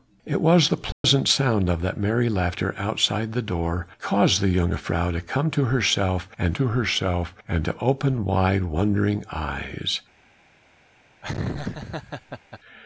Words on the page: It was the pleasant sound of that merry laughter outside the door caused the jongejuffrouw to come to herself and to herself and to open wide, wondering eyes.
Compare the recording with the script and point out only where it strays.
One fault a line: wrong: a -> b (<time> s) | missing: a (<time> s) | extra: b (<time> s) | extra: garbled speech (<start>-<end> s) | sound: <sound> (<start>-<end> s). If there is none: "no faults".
sound: dropout (0.9-1.0 s)
sound: laugh (11.2-12.6 s)